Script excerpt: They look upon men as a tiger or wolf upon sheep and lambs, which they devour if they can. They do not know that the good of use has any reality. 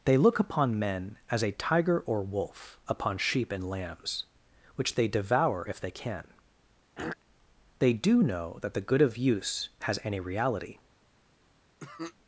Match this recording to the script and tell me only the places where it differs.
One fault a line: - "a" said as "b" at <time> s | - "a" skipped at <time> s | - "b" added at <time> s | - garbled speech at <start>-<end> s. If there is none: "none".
- "not" skipped at 8.2 s